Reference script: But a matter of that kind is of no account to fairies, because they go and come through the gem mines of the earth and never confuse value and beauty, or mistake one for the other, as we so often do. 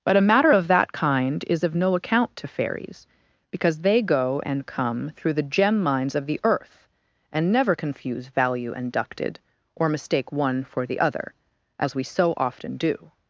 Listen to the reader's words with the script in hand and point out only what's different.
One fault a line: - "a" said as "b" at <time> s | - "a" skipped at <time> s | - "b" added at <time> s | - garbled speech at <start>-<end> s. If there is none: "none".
- "beauty" said as "ducted" at 8.9 s